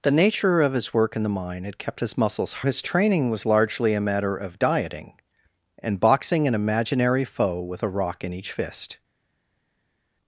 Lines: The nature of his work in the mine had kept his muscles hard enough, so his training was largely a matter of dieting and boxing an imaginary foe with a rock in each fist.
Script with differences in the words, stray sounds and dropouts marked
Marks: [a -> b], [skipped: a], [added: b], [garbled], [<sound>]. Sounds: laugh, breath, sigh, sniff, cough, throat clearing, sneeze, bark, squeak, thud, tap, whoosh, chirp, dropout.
The nature of his work in the mine had kept his muscles [skipped: hard enough, so] his training was largely a matter of dieting and boxing an imaginary foe with a rock in each fist.